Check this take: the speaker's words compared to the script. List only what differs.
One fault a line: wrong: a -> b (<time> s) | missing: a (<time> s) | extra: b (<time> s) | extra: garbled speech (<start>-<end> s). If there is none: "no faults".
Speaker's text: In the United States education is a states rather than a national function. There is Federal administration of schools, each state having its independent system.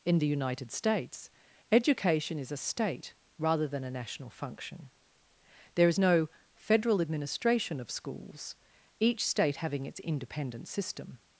wrong: states -> state (2.6 s)
extra: no (6.0 s)